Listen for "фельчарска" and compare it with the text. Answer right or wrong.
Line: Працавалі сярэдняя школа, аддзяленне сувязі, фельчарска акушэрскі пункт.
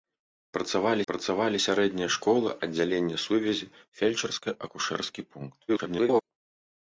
right